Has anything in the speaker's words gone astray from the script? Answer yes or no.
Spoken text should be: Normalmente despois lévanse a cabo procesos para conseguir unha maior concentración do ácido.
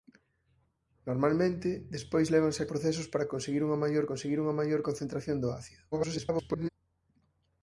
yes